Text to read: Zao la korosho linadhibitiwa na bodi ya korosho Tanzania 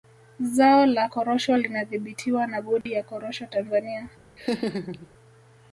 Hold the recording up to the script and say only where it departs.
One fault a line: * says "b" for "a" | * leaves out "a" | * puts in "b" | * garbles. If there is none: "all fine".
all fine